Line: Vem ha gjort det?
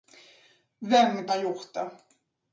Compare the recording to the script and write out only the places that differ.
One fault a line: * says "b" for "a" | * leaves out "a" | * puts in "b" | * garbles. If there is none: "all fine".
all fine